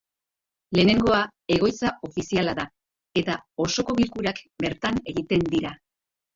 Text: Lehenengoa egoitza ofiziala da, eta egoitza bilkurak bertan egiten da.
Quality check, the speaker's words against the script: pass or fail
fail